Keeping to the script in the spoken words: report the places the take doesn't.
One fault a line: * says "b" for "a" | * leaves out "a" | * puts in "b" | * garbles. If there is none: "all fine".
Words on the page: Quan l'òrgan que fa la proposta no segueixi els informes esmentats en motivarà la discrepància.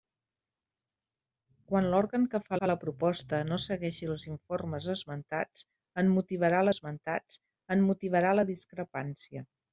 * puts in "fa"
* puts in "esmentats en motivarà"